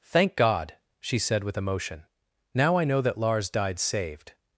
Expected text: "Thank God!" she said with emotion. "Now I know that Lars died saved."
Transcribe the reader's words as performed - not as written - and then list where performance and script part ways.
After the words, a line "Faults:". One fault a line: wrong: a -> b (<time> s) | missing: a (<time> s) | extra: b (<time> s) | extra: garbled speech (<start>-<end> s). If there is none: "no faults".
"Thank God!" she said with emotion. "Now I know that Lars died saved."
Faults:
no faults